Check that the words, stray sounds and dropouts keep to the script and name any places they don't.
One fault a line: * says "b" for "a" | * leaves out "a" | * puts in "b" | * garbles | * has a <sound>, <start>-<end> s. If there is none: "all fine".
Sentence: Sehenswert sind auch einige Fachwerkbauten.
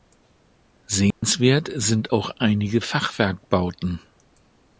* has a dropout, 1.1-1.2 s